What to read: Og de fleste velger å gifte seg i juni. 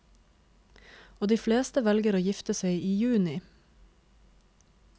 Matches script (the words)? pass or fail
pass